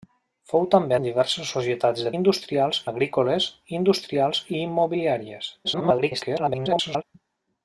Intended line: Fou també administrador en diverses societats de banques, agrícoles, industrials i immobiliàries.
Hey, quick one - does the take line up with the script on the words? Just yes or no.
no